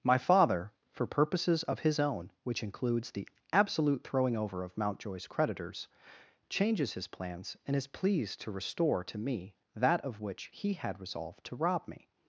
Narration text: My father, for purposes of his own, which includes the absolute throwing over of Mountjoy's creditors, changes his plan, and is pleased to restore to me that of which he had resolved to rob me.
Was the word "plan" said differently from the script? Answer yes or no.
yes